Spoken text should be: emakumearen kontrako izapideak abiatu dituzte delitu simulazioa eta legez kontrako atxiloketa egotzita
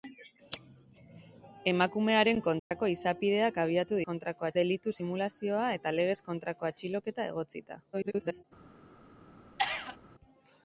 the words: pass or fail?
fail